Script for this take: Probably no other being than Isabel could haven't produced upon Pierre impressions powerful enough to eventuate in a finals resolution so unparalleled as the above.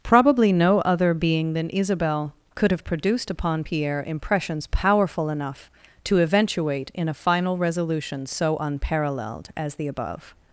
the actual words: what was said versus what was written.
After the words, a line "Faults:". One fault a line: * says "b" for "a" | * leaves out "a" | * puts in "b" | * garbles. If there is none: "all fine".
Probably no other being than Isabel could have produced upon Pierre impressions powerful enough to eventuate in a final resolution so unparalleled as the above.
Faults:
* says "have" for "haven't"
* says "final" for "finals"